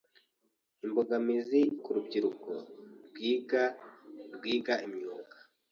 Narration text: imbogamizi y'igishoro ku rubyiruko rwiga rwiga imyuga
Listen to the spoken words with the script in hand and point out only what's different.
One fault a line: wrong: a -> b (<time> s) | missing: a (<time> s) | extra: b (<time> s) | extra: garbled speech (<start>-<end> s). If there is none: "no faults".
missing: y'igishoro (1.6 s)